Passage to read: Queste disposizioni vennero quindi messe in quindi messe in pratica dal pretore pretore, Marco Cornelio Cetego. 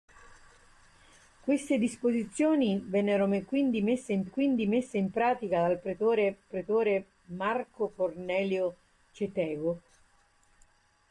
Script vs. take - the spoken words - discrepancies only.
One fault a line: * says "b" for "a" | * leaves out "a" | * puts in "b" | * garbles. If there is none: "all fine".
all fine